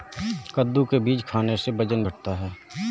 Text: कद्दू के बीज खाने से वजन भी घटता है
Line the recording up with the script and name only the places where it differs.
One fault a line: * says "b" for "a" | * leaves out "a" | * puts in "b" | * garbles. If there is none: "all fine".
* leaves out "भी"